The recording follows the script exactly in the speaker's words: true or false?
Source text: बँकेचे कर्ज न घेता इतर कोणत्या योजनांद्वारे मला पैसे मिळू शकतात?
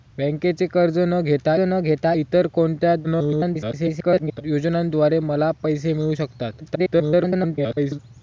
false